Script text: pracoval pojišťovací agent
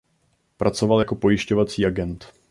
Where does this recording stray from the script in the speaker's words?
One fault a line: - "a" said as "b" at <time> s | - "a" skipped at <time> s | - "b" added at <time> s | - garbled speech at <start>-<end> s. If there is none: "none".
- "jako" added at 1.0 s